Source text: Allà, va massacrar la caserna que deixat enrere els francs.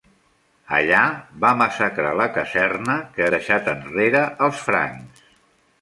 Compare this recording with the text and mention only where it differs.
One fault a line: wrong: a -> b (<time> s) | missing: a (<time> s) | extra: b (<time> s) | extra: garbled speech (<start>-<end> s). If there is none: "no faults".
no faults